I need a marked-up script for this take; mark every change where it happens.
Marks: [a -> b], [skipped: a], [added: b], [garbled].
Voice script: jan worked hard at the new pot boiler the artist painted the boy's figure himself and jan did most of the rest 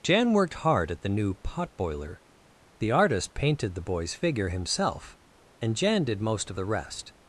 jan worked hard at the new pot boiler the artist painted the boy's figure himself and jan did most of the rest